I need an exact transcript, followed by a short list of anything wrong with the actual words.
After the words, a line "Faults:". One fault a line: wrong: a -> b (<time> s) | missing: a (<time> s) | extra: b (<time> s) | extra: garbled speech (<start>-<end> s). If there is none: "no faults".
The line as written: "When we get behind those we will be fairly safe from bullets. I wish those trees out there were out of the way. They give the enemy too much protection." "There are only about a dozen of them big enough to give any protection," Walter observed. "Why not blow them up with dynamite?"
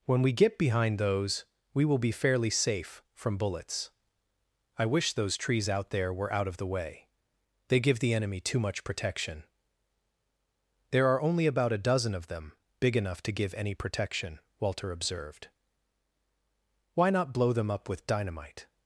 "When we get behind those we will be fairly safe from bullets. I wish those trees out there were out of the way. They give the enemy too much protection." "There are only about a dozen of them big enough to give any protection," Walter observed. "Why not blow them up with dynamite?"
Faults:
no faults